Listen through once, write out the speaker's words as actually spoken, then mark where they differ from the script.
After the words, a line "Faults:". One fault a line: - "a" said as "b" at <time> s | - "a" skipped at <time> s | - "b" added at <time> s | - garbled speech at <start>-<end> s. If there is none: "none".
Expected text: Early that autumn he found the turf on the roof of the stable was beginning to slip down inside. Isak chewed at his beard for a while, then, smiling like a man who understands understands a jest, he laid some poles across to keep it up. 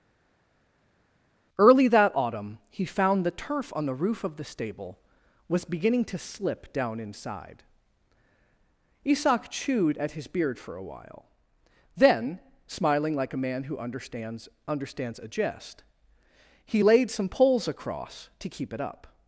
Early that autumn he found the turf on the roof of the stable was beginning to slip down inside. Isak chewed at his beard for a while, then, smiling like a man who understands understands a jest, he laid some poles across to keep it up.
Faults:
none